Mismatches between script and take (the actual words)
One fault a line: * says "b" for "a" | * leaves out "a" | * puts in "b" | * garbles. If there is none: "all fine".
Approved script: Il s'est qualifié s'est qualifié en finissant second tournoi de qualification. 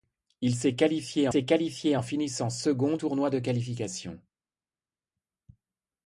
all fine